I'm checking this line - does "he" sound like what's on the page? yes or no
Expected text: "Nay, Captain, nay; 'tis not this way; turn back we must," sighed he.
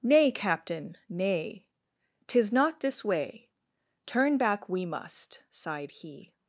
yes